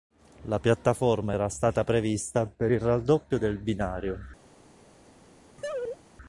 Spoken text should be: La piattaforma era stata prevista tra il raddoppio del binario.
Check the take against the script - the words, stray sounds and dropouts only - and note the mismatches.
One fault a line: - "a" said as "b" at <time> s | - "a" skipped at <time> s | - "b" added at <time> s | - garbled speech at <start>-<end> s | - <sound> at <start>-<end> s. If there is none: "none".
- "tra" said as "per" at 2.5 s
- laugh at 5.6-6.0 s